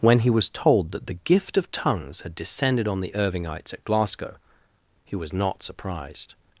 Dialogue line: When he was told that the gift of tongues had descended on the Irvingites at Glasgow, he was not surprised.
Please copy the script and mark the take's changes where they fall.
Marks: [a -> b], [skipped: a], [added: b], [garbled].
When he was told that the gift of tongues had descended on the Irvingites at Glasgow, he was not surprised.